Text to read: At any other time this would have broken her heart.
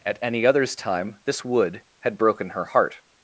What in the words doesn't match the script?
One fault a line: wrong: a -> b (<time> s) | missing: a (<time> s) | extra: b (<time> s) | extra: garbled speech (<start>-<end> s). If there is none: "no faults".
wrong: other -> others (0.5 s)
wrong: have -> had (2.0 s)